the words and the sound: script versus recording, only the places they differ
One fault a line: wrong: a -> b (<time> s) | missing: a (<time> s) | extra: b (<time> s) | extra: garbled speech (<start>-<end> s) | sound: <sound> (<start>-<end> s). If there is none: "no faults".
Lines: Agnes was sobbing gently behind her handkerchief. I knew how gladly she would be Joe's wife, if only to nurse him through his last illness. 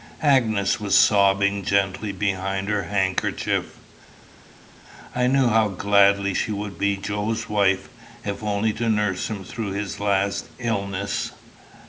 no faults